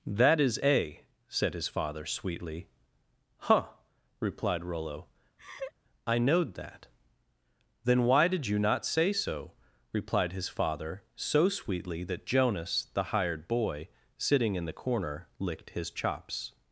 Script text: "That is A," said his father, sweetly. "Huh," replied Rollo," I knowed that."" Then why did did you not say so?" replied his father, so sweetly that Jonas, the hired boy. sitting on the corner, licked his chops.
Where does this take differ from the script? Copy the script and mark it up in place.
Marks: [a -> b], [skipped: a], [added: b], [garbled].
"That is A," said his father, sweetly. "Huh," replied Rollo," I knowed that."" Then why did [skipped: did] you not say so?" replied his father, so sweetly that Jonas, the hired boy. sitting [on -> in] the corner, licked his chops.